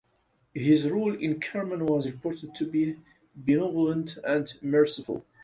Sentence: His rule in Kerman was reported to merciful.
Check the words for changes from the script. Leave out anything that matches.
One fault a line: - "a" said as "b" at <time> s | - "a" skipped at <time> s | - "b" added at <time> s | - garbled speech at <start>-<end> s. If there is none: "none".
- "be benevolent and" added at 2.6 s